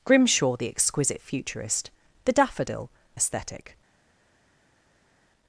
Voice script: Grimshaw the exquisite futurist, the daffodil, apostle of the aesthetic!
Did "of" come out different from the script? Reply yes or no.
yes